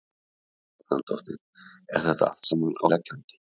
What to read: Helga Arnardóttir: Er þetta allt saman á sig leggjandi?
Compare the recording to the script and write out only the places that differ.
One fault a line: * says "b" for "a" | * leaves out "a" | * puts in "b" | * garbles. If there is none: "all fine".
* leaves out "sig"